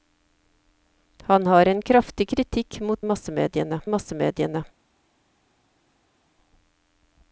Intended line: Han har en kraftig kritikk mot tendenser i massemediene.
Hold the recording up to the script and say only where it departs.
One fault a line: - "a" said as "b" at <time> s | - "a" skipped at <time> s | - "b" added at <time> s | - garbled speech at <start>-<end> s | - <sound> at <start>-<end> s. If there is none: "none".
- "tendenser" said as "massemediene" at 3.0 s